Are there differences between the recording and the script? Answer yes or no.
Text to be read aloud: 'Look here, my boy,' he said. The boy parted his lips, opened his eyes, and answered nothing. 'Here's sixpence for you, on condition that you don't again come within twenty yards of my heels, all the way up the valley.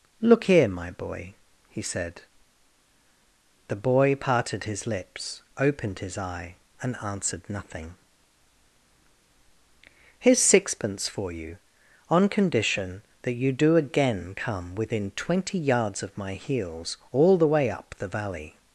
yes